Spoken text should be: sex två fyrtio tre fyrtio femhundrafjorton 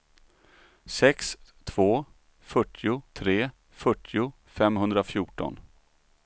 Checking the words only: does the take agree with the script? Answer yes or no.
yes